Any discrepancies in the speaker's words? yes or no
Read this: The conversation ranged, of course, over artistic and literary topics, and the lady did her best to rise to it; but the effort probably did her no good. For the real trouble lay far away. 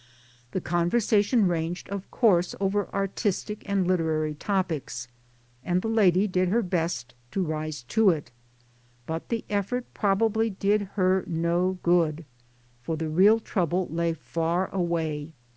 no